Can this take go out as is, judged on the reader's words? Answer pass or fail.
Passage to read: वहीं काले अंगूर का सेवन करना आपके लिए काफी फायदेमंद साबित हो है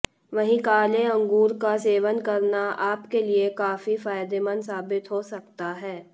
fail